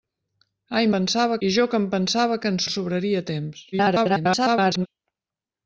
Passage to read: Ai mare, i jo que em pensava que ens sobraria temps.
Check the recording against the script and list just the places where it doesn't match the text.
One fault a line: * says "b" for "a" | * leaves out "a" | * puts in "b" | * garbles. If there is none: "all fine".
* says "pensava" for "mare"
* puts in "ens"
* garbles